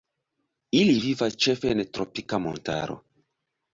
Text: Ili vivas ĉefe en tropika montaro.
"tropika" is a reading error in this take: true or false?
false